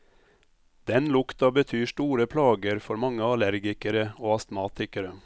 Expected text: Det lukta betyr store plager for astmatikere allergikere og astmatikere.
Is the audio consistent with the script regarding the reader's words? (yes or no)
no